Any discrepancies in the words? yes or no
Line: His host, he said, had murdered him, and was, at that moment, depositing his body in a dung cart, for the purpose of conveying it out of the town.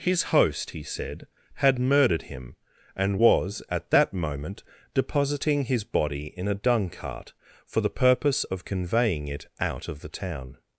no